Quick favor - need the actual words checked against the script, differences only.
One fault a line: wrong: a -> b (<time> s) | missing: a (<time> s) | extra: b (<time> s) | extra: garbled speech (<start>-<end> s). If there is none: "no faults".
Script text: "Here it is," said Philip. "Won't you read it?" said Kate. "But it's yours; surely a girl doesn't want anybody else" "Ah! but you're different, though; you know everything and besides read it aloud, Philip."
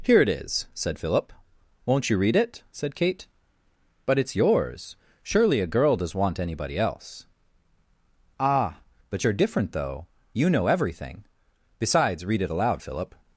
wrong: doesn't -> does (6.0 s)
missing: and (11.3 s)